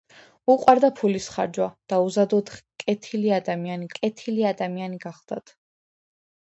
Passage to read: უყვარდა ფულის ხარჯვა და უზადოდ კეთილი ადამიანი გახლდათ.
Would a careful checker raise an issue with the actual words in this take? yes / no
yes